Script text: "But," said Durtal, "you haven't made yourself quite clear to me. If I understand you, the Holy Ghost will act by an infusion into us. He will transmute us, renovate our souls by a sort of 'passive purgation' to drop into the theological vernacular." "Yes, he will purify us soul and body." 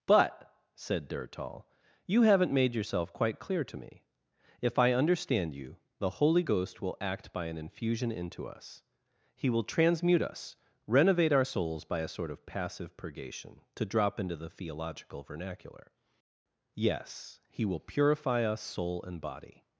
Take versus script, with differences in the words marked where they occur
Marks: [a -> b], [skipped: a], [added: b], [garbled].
"But," said Durtal, "you haven't made yourself quite clear to me. If I understand you, the Holy Ghost will act by an infusion into us. He will transmute us, renovate our souls by a sort of 'passive purgation' to drop into the theological vernacular." "Yes, he will purify us soul and body."